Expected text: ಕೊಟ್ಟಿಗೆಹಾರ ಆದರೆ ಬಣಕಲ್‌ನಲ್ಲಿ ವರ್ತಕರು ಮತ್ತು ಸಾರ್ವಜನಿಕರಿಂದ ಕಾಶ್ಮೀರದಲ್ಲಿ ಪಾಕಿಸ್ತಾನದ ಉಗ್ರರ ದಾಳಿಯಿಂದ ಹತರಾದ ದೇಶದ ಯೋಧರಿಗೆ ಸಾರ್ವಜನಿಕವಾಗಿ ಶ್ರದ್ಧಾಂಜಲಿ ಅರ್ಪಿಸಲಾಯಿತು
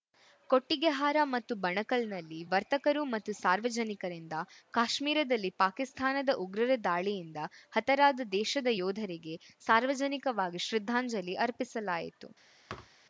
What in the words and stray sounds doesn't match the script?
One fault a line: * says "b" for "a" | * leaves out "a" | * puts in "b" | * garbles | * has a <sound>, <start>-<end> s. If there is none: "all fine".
* says "ಮತ್ತು" for "ಆದರೆ"
* has a thud, 12.7-13.0 s